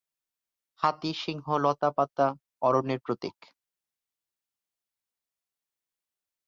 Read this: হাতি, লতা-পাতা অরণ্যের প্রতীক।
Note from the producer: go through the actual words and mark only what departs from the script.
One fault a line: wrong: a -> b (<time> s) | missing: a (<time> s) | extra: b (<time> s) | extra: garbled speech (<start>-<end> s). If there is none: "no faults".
extra: সিংহ (1.1 s)